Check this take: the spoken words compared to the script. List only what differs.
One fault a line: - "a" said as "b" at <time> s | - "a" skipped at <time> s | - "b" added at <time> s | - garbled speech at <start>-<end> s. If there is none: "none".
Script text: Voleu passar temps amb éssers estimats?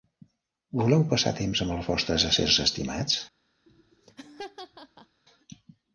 - "els vostres" added at 1.8 s